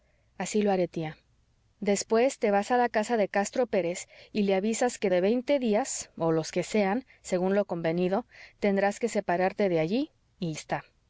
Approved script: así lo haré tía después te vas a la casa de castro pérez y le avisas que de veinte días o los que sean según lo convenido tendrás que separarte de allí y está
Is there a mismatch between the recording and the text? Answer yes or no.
no